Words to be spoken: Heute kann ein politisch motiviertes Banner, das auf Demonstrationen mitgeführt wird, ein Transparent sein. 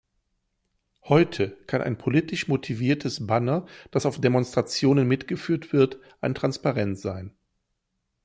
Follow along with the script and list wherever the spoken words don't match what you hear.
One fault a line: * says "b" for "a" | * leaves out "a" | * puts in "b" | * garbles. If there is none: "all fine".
all fine